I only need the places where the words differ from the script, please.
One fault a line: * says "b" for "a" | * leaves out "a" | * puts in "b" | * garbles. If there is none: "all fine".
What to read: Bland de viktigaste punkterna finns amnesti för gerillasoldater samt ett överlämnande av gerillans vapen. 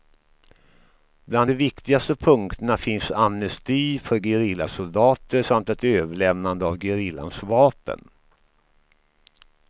all fine